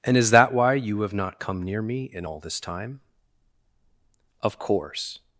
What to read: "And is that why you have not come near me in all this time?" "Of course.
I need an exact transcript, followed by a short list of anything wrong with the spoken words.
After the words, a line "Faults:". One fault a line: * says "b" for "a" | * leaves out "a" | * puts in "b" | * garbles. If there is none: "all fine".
"And is that why you have not come near me in all this time?" "Of course.
Faults:
all fine